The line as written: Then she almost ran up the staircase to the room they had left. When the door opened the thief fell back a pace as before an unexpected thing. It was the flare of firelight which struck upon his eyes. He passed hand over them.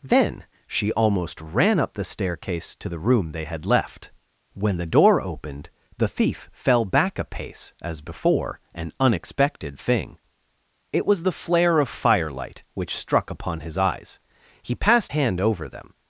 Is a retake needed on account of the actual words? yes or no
no